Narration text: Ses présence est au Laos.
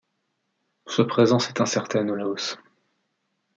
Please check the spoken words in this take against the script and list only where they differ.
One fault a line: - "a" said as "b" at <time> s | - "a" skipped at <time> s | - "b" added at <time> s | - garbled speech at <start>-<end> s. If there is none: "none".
- "Ses" said as "Sa" at 0.9 s
- "incertaine" added at 1.6 s